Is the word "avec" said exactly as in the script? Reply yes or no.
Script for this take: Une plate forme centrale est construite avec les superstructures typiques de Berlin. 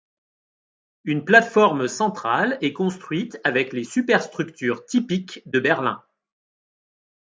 yes